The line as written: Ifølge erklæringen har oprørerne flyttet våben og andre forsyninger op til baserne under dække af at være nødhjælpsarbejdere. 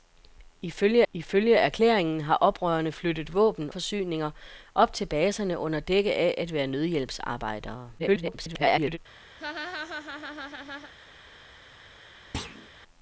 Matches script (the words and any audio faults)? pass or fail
fail